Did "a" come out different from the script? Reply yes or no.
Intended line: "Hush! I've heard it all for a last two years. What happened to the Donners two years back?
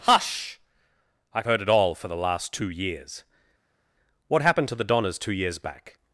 yes